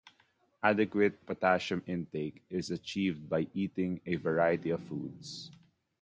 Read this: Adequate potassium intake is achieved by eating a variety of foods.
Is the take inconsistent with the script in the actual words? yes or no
no